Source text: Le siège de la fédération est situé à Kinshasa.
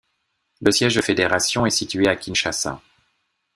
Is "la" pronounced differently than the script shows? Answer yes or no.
yes